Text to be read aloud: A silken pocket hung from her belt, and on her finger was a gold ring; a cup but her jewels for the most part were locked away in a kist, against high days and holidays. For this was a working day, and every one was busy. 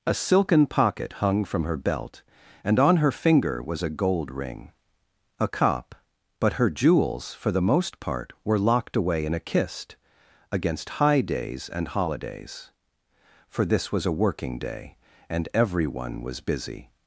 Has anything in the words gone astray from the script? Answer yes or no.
no